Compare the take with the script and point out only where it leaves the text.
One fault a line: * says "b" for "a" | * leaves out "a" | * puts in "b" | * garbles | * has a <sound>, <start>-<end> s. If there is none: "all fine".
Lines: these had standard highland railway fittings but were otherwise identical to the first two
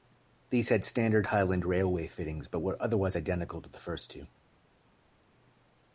all fine